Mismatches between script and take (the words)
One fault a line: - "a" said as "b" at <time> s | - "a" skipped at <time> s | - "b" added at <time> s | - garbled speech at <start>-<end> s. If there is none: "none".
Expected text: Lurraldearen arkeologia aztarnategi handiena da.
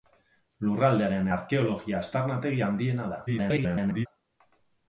- garbled speech at 3.3-4.1 s